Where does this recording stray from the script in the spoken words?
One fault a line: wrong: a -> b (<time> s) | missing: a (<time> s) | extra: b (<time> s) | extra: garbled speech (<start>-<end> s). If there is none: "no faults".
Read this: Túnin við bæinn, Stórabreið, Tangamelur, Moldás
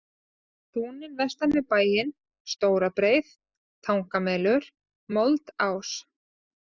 extra: vestan (1.2 s)